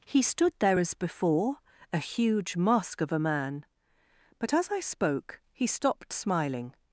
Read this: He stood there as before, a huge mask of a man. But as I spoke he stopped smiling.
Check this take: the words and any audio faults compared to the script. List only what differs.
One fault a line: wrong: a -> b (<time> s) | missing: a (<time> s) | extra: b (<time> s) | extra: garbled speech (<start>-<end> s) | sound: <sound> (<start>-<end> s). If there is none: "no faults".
no faults